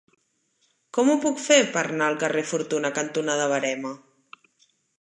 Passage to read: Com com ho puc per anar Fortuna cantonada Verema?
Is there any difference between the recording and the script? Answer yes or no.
yes